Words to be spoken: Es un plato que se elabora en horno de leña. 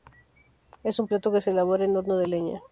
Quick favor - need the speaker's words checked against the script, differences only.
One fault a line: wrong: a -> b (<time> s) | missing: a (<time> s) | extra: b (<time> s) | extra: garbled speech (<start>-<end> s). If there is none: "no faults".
no faults